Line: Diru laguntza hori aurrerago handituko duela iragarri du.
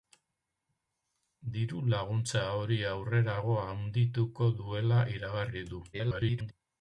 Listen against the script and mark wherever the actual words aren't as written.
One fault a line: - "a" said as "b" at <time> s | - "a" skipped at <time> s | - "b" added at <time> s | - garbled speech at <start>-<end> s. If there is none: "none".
- garbled speech at 5.9-6.5 s